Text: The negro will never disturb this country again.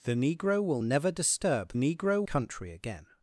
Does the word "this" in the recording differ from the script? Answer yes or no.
yes